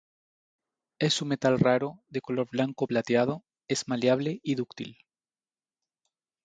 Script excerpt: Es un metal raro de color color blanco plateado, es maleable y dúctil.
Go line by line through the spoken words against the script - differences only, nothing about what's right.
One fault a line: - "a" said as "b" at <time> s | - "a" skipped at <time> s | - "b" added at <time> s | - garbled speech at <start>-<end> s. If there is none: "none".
- "color" skipped at 2.5 s